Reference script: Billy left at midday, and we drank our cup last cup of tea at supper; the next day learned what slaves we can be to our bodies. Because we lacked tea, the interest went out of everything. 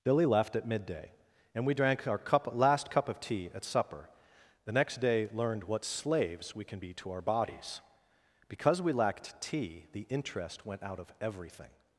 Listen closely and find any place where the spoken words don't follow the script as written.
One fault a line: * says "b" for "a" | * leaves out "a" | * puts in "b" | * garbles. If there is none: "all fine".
all fine